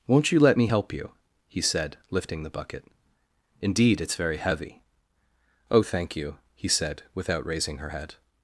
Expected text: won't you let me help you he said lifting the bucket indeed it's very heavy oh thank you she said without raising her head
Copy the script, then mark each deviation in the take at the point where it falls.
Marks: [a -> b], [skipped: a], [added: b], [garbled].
won't you let me help you he said lifting the bucket indeed it's very heavy oh thank you [she -> he] said without raising her head